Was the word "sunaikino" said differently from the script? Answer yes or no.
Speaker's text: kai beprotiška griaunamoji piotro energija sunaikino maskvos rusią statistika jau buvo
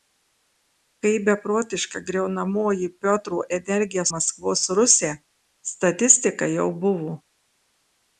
yes